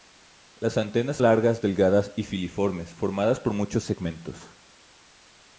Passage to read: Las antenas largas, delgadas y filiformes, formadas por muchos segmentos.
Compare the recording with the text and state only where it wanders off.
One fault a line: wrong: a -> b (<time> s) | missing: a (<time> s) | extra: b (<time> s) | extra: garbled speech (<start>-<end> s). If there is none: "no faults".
no faults